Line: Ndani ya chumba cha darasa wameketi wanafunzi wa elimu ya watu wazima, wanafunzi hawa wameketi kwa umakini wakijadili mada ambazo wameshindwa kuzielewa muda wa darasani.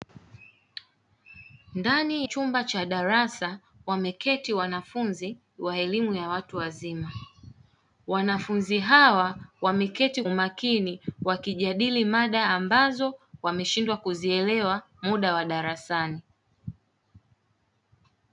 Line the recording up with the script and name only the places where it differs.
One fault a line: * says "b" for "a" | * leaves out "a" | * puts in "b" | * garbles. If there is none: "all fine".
* leaves out "ya"
* leaves out "kwa"